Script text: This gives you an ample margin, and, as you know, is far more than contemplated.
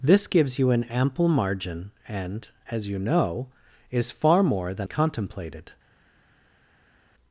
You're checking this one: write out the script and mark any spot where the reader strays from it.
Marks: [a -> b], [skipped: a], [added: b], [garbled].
This gives you an ample margin, and, as you know, is far more than contemplated.